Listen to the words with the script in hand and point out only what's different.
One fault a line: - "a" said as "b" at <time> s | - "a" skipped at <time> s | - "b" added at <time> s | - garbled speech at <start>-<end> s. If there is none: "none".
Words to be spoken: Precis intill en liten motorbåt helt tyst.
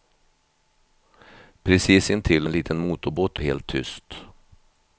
none